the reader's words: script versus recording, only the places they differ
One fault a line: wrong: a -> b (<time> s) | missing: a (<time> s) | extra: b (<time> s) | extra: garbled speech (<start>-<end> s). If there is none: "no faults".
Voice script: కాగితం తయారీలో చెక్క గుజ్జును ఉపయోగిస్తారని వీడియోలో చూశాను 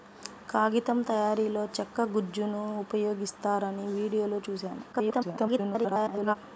extra: garbled speech (4.9-6.4 s)